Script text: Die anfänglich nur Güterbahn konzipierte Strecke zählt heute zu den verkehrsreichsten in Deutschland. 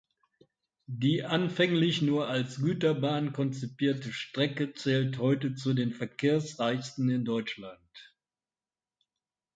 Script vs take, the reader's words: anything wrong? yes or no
yes